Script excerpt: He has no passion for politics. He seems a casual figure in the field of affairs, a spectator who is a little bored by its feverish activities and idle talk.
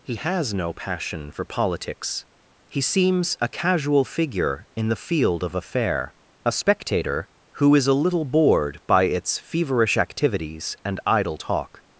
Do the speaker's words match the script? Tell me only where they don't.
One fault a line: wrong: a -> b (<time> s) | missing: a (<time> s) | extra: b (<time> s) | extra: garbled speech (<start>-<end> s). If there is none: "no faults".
wrong: affairs -> affair (5.6 s)